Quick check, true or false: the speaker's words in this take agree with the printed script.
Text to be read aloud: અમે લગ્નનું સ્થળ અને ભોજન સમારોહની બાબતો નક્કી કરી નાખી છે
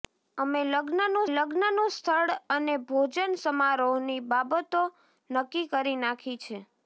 false